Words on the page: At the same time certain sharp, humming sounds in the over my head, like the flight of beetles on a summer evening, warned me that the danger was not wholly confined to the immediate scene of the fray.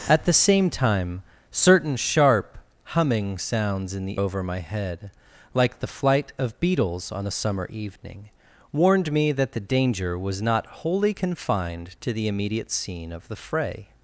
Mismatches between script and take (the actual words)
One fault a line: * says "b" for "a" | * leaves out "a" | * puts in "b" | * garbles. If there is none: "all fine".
all fine